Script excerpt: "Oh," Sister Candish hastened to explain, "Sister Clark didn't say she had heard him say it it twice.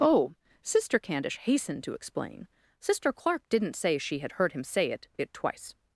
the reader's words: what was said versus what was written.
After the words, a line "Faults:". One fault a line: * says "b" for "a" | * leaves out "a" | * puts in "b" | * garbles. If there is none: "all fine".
"Oh," Sister Candish hastened to explain, "Sister Clark didn't say she had heard him say it it twice.
Faults:
all fine